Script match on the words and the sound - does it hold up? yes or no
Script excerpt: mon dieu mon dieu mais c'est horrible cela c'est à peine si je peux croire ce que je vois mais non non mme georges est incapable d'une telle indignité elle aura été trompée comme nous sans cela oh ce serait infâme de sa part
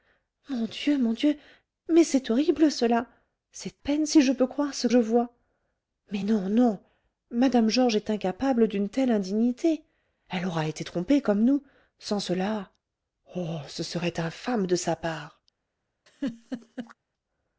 no